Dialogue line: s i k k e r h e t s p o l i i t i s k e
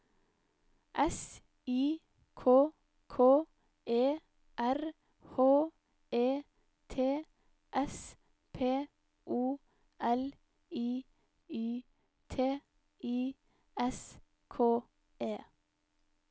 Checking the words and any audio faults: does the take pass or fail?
pass